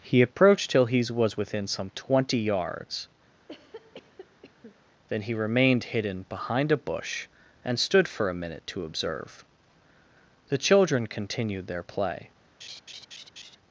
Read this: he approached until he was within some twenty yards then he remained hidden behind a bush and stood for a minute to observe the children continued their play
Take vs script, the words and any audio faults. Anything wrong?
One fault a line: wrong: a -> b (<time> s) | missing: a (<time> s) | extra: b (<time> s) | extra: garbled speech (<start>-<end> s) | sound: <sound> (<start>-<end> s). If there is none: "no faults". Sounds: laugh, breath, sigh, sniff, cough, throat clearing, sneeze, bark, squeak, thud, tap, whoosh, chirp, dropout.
wrong: until -> till (0.7 s)
sound: cough (3.4-4.9 s)
sound: laugh (12.6-13.6 s)